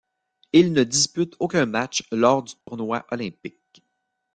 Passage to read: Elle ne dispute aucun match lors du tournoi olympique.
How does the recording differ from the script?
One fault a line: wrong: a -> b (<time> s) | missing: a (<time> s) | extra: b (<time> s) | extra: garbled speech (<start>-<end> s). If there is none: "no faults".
wrong: Elle -> Il (0.5 s)